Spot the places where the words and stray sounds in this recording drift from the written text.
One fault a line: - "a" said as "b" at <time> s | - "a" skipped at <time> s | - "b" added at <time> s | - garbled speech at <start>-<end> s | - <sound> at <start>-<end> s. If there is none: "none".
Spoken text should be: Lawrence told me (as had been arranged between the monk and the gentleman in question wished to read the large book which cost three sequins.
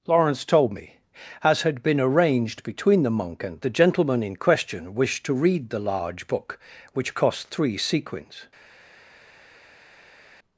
none